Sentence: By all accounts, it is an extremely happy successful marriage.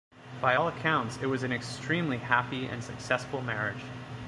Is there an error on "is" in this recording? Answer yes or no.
yes